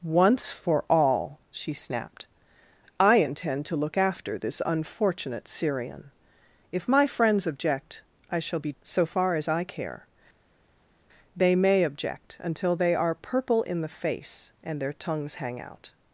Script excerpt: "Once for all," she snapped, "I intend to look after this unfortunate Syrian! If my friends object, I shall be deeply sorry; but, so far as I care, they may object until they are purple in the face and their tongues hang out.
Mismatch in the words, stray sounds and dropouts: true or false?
true